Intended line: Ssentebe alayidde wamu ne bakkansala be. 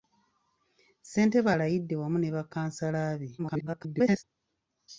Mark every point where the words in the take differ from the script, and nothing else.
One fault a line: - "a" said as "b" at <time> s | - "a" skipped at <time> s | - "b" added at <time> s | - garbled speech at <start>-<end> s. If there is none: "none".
- garbled speech at 3.4-4.2 s